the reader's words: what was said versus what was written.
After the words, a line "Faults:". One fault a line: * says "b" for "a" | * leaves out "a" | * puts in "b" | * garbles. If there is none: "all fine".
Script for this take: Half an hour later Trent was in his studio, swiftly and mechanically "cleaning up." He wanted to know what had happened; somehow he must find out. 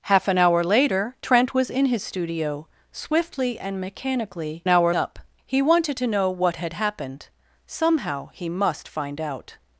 Half an hour later Trent was in his studio, swiftly and mechanically "hour up." He wanted to know what had happened; somehow he must find out.
Faults:
* says "hour" for "cleaning"